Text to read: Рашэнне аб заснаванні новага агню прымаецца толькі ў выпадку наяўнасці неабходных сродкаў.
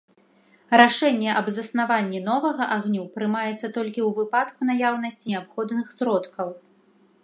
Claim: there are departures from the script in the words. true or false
false